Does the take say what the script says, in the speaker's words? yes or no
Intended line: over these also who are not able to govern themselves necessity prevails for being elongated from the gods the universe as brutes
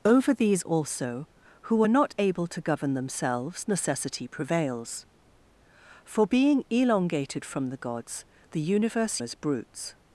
yes